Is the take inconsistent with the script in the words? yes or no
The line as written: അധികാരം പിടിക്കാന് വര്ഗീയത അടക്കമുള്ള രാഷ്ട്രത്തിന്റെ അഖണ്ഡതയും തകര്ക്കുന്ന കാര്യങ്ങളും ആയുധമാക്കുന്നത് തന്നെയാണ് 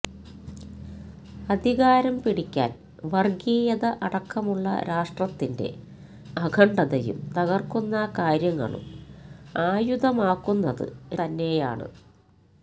no